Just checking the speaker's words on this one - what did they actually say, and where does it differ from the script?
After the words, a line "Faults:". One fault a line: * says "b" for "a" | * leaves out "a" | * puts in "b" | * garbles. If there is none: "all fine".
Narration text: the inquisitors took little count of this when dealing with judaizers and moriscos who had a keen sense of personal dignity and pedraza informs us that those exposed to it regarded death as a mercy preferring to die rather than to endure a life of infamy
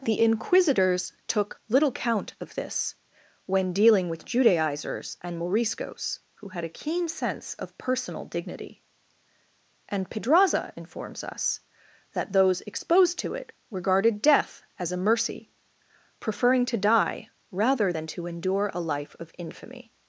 the inquisitors took little count of this when dealing with judaizers and moriscos who had a keen sense of personal dignity and pedraza informs us that those exposed to it regarded death as a mercy preferring to die rather than to endure a life of infamy
Faults:
all fine